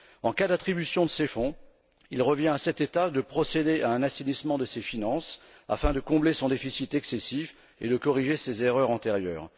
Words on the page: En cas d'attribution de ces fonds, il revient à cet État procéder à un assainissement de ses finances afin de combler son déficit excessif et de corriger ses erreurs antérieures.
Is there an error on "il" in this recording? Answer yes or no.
no